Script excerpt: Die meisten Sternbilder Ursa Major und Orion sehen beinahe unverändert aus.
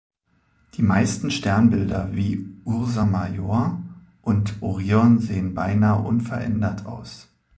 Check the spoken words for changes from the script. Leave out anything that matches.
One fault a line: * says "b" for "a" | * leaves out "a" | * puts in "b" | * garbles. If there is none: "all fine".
* puts in "wie"